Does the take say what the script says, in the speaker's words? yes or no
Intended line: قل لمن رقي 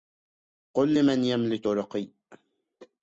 no